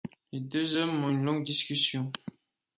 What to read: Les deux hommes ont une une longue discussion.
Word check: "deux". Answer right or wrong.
right